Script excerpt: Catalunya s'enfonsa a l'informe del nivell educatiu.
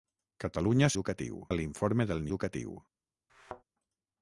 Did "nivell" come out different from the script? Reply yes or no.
yes